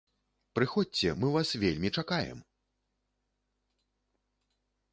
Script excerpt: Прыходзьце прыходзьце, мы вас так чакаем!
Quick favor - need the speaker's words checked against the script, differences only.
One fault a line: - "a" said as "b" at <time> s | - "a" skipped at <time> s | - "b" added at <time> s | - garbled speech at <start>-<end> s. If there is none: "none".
- "прыходзьце" skipped at 1.1 s
- "так" said as "вельмі" at 1.6 s